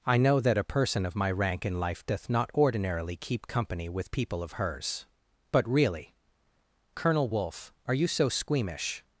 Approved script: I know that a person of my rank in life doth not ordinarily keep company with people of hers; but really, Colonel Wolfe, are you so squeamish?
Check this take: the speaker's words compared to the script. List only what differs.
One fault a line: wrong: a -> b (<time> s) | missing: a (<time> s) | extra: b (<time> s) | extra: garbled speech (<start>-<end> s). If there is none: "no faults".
no faults